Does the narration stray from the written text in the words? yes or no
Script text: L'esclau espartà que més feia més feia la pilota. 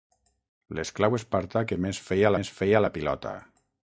no